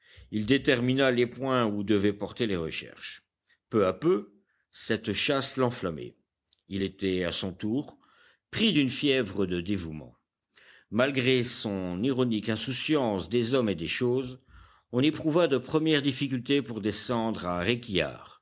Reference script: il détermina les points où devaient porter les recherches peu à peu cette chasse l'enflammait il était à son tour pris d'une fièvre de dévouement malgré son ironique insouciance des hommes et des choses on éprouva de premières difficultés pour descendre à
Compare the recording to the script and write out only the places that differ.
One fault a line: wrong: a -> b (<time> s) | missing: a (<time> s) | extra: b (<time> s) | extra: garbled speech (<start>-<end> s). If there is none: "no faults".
no faults